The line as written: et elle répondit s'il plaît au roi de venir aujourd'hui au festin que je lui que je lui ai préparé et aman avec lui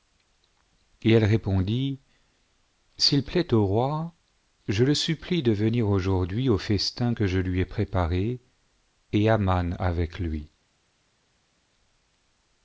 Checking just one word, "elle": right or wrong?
right